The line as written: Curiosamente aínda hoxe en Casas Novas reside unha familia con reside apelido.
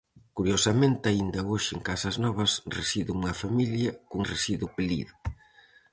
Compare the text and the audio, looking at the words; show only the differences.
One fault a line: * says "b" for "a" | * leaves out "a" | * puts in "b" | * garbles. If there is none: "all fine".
all fine